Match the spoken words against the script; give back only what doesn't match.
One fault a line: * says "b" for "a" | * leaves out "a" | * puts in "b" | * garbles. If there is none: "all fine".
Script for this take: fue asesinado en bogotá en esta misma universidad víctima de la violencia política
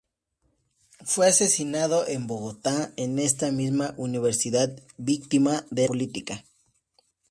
* leaves out "la violencia"